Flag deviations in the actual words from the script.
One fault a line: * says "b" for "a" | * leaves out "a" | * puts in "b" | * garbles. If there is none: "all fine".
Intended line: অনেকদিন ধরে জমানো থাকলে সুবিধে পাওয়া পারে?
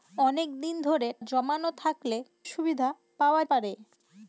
all fine